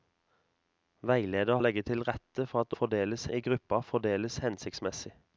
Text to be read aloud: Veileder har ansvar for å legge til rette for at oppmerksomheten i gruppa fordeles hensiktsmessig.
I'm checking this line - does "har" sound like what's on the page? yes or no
no